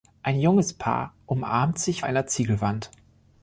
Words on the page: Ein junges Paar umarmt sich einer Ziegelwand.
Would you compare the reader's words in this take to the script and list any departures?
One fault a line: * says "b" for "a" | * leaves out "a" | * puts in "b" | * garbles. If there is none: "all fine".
all fine